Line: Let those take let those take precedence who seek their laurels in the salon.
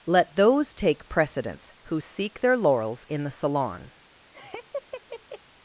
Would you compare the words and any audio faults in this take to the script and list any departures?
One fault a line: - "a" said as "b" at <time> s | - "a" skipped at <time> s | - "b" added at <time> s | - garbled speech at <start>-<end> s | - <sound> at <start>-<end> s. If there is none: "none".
- "let those take" skipped at 1.1 s
- laugh at 4.3-5.4 s